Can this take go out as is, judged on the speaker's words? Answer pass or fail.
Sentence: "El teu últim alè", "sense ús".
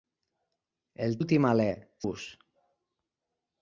fail